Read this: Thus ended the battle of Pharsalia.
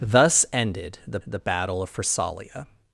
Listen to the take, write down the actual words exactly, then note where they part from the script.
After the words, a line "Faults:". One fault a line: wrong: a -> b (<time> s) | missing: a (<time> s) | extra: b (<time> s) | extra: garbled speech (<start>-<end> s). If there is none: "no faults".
Thus ended the the battle of Pharsalia.
Faults:
extra: the (1.2 s)